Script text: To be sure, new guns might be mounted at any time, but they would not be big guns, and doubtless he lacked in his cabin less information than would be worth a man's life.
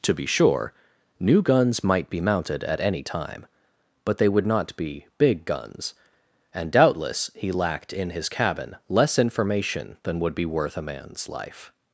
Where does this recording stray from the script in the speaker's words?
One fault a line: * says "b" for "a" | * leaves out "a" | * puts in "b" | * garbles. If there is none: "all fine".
all fine